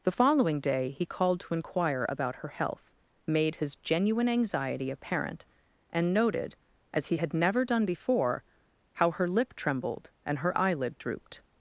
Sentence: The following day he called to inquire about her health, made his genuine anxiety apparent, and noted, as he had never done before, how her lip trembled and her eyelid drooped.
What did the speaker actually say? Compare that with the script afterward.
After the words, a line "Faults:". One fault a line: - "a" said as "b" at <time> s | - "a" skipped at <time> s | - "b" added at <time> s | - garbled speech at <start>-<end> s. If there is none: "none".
The following day he called to inquire about her health, made his genuine anxiety apparent, and noted, as he had never done before, how her lip trembled and her eyelid drooped.
Faults:
none